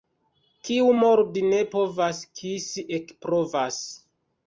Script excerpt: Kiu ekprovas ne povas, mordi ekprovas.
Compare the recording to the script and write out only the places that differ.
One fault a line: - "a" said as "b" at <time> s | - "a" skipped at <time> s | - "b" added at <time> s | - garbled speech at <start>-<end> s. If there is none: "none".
- "ekprovas" said as "mordi" at 1.0 s
- "mordi" said as "kisi" at 2.4 s